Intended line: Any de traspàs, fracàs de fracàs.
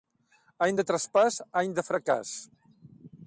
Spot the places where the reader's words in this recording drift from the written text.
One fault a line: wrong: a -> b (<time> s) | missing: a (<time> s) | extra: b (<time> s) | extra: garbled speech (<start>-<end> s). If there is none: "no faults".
wrong: fracàs -> any (1.6 s)